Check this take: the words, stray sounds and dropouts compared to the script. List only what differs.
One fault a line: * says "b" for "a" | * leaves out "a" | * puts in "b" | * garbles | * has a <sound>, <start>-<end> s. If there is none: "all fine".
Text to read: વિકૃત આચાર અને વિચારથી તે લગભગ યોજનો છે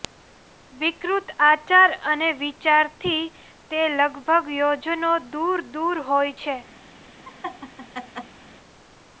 * puts in "દૂર દૂર હોય"
* has a laugh, 7.2-8.4 s